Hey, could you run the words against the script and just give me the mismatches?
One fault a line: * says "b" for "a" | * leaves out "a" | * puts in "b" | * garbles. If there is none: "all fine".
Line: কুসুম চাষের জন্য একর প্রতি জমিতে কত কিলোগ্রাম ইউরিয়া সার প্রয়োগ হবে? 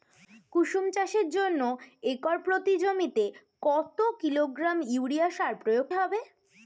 all fine